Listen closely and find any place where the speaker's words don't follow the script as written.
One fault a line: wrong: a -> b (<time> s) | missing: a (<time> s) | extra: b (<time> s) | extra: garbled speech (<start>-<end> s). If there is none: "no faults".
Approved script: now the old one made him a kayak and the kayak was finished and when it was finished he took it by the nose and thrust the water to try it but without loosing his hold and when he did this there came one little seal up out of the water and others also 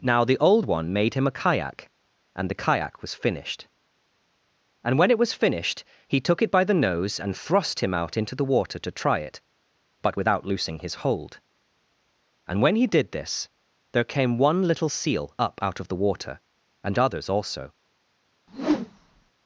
extra: him out into (7.8 s)